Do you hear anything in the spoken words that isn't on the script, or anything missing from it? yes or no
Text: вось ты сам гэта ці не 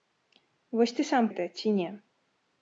no